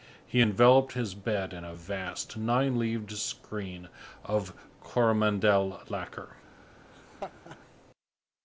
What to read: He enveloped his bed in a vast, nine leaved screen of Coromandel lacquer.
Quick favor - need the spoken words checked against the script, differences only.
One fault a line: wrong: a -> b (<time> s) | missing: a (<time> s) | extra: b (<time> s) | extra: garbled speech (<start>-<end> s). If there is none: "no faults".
no faults